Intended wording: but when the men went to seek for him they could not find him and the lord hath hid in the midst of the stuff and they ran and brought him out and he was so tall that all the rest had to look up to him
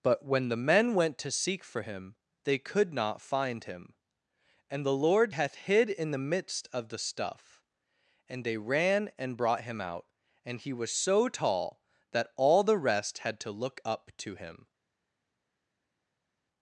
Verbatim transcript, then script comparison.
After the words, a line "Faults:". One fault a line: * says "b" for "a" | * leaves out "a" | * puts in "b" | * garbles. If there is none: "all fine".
but when the men went to seek for him they could not find him and the lord hath hid in the midst of the stuff and they ran and brought him out and he was so tall that all the rest had to look up to him
Faults:
all fine